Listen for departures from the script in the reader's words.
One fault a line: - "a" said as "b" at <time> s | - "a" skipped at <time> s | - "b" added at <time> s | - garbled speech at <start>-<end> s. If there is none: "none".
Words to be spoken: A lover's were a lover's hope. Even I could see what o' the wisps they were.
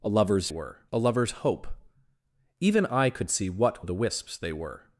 none